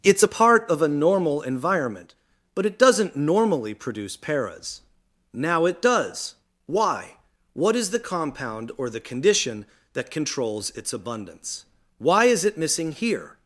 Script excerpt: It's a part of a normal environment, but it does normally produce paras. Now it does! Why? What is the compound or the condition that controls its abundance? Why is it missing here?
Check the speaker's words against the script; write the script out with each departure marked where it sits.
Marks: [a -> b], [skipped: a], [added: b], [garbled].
It's a part of a normal environment, but it [does -> doesn't] normally produce paras. Now it does! Why? What is the compound or the condition that controls its abundance? Why is it missing here?